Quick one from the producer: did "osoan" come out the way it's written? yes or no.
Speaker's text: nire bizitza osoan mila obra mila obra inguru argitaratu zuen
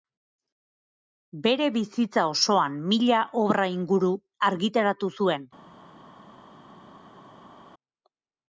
yes